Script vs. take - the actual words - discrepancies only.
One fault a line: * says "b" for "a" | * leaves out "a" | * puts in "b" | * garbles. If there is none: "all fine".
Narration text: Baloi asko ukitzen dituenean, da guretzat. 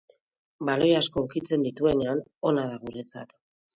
* puts in "ona"